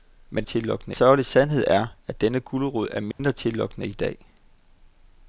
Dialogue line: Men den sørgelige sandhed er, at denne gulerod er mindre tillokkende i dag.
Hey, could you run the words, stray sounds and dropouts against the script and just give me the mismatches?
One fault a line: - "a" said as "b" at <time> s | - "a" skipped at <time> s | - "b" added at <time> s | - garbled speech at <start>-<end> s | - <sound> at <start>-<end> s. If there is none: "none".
- "den" said as "tillokkende" at 0.4 s
- dropout at 3.1-3.2 s